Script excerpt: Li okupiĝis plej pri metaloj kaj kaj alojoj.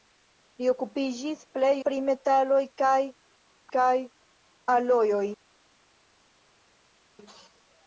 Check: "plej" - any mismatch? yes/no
no